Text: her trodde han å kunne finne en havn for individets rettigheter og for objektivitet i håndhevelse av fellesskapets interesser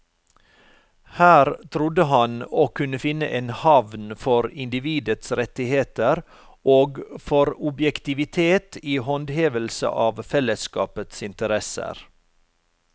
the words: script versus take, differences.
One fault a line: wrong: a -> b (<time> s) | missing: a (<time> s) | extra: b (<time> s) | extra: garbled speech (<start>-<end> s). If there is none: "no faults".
no faults